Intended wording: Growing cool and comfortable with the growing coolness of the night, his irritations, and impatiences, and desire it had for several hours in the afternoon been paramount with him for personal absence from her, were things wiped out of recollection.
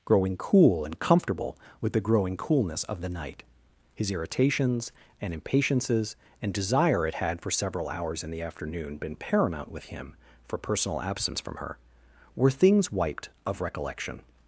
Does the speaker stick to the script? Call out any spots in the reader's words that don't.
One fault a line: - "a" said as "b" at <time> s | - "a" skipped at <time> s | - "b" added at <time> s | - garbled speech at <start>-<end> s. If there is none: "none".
- "out" skipped at 13.3 s